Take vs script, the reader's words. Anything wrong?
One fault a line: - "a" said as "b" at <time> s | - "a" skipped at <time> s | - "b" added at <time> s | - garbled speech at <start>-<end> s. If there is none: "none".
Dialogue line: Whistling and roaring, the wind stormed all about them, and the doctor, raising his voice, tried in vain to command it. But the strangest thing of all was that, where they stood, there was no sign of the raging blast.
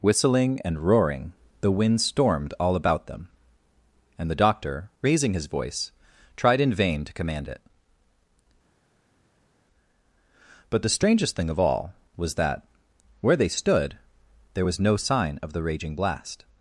none